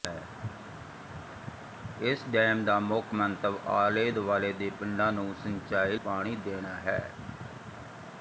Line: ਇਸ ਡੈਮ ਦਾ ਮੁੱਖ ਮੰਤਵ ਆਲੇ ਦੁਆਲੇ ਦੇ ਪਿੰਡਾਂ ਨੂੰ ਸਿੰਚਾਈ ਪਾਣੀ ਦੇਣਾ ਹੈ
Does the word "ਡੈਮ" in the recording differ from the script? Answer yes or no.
no